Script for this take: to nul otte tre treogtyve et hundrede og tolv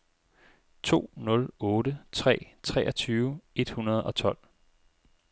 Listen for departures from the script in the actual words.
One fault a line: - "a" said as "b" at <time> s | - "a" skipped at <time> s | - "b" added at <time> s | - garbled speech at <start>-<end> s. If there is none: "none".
none